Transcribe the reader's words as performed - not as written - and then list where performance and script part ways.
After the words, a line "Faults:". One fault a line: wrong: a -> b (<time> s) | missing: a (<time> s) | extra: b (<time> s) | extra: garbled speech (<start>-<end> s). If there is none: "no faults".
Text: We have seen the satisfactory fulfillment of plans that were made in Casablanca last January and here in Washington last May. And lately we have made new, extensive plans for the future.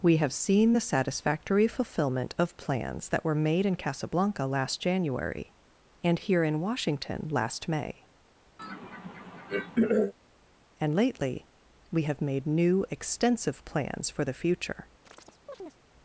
We have seen the satisfactory fulfillment of plans that were made in Casablanca last January and here in Washington last May. And lately we have made new, extensive plans for the future.
Faults:
no faults